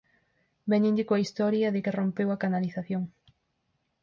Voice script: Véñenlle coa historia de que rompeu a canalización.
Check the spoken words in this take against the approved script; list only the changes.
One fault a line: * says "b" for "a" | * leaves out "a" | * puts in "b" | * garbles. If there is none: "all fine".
all fine